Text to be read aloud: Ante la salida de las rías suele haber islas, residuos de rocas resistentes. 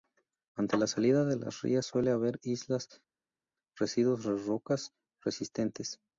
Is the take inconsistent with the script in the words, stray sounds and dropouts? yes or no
no